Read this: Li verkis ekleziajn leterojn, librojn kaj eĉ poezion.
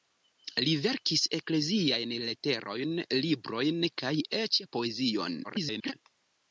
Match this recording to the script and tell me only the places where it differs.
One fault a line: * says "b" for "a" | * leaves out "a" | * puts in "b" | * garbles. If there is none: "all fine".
* garbles